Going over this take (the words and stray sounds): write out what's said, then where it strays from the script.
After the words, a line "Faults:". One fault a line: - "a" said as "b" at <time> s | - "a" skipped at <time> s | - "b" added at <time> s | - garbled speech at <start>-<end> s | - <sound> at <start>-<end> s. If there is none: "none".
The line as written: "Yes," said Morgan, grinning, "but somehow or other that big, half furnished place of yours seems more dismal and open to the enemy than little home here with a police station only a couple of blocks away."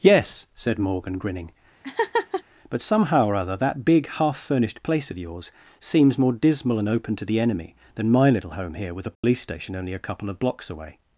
"Yes," said Morgan, grinning, "but somehow or other that big, half furnished place of yours seems more dismal and open to the enemy than my little home here with a police station only a couple of blocks away."
Faults:
- laugh at 1.8-2.4 s
- "my" added at 8.1 s
- dropout at 9.1-9.2 s